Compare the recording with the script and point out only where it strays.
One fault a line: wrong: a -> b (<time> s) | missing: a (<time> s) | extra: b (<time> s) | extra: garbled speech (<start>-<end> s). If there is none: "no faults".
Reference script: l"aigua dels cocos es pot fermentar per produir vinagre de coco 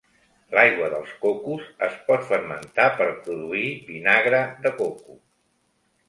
no faults